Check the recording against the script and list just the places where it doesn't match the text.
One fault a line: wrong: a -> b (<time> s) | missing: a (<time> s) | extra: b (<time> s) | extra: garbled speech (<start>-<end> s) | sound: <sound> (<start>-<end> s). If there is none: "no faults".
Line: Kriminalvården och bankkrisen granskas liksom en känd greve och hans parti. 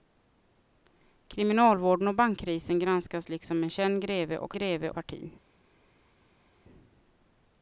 wrong: hans -> greve (4.5 s)